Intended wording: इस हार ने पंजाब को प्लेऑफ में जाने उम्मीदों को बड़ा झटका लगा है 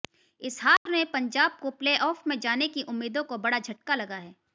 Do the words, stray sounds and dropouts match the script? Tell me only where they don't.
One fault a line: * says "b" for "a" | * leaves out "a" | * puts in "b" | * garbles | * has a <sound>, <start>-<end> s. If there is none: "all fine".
* has a dropout, 0.8-0.9 s
* puts in "की"